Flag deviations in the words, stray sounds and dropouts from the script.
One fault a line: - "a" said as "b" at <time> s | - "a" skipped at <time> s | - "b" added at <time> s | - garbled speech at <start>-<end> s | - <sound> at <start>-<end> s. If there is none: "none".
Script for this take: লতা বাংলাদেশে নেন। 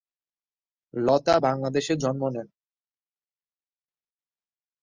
- "জন্ম" added at 1.9 s